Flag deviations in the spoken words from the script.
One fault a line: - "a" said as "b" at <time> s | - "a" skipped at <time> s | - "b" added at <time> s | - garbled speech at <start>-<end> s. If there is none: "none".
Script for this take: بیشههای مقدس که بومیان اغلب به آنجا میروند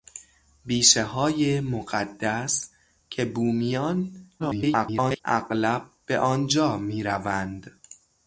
- garbled speech at 4.4-5.2 s